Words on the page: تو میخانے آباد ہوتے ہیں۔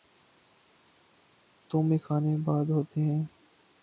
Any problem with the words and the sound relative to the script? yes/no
no